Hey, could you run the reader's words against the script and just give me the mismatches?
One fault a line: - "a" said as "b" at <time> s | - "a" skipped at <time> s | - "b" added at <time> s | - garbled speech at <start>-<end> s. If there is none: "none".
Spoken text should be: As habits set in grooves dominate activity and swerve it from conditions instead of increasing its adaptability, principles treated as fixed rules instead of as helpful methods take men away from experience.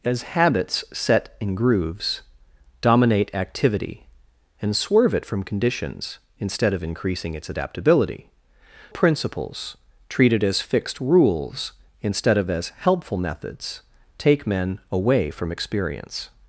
none